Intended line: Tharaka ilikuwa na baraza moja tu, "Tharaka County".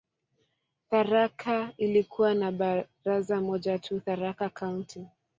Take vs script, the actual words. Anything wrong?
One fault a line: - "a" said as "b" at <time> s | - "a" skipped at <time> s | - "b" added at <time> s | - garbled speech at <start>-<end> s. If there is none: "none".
none